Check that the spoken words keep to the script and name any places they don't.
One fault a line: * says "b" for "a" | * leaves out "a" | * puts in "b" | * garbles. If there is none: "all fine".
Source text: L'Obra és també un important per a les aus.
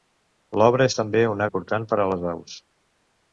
all fine